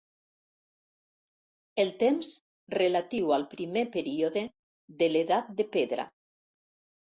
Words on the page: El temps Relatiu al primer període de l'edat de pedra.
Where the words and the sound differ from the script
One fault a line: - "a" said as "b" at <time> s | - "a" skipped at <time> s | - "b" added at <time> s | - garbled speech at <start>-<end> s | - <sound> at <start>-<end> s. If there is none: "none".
none